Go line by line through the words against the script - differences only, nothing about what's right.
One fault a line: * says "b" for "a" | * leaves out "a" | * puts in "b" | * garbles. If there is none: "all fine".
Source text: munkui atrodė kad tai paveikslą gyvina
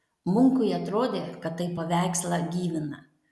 all fine